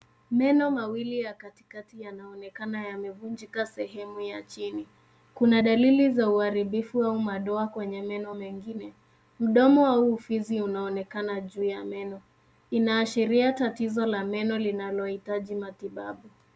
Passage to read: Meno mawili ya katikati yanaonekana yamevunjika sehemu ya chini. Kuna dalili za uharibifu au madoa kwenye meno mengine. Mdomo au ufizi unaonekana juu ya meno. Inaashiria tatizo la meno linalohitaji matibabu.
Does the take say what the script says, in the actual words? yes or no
yes